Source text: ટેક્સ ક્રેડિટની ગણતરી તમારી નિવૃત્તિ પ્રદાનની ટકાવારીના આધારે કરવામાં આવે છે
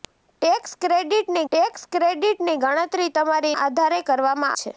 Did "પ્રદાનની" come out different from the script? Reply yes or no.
yes